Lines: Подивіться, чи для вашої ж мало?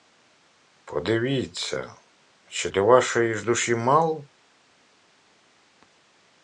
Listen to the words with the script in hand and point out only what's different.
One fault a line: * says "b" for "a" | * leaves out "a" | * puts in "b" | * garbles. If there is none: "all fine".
* puts in "душі"